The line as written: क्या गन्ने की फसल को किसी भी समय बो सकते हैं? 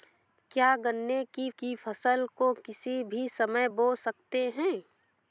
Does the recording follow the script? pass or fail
fail